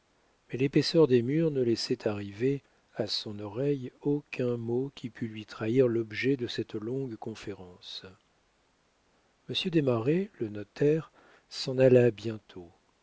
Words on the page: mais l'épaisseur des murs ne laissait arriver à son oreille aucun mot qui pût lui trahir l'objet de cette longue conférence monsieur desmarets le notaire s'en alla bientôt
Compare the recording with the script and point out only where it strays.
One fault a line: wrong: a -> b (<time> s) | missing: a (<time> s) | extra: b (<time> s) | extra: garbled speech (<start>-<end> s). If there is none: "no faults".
no faults